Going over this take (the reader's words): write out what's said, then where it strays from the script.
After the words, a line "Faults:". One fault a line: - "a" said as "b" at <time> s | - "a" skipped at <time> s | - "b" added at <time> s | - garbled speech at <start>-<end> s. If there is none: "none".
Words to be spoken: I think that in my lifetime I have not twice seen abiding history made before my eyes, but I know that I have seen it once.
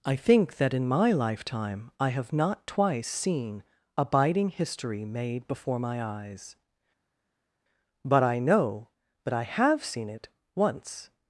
I think that in my lifetime I have not twice seen abiding history made before my eyes, but I know that I have seen it once.
Faults:
none